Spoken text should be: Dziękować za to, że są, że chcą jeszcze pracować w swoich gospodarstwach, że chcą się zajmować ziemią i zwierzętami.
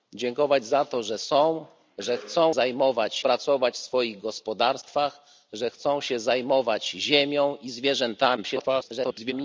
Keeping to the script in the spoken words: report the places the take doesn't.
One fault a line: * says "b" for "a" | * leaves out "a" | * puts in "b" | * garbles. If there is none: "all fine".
* says "zajmować" for "jeszcze"
* garbles